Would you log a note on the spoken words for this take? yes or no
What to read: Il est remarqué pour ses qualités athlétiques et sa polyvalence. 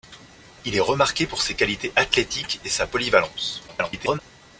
yes